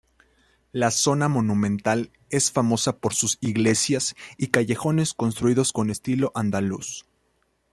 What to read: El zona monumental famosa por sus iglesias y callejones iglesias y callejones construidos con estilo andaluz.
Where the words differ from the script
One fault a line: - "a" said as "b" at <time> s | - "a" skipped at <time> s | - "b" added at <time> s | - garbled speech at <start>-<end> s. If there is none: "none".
- "El" said as "La" at 0.7 s
- "es" added at 2.3 s
- "iglesias y callejones" skipped at 5.1 s